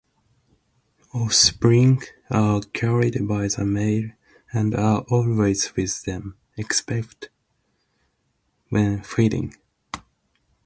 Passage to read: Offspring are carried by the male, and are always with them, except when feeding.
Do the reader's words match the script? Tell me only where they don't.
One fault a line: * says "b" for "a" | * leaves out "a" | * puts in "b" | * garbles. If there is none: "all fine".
all fine